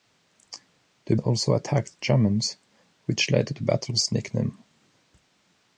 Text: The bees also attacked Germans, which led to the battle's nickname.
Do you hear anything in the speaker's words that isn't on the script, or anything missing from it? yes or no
yes